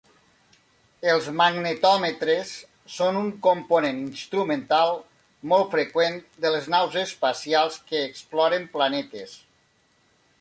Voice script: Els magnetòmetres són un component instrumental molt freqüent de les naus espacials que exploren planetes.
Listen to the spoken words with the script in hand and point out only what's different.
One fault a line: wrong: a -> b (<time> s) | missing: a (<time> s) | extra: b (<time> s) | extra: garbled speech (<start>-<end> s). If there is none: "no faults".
no faults